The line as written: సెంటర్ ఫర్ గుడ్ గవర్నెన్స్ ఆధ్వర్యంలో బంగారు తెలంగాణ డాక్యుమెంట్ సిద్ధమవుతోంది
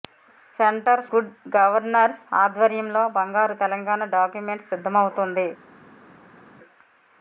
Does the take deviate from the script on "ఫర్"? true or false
true